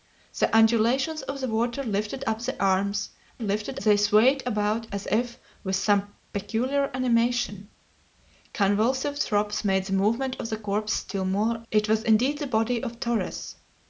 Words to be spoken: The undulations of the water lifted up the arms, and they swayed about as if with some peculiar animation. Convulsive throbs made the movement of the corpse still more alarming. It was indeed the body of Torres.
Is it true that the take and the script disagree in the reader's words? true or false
true